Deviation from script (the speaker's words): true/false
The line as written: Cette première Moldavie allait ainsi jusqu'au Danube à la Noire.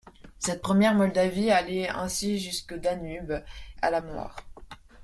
false